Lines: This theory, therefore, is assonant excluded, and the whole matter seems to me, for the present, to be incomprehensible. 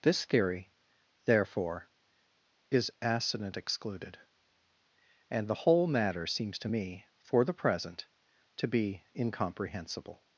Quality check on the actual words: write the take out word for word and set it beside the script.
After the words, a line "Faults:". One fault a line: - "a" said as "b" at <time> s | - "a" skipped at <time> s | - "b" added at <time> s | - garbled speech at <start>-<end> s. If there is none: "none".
This theory, therefore, is assonant excluded, and the whole matter seems to me, for the present, to be incomprehensible.
Faults:
none